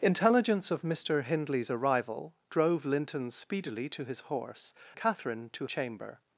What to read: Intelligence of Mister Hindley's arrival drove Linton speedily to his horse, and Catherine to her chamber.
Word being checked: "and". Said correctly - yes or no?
no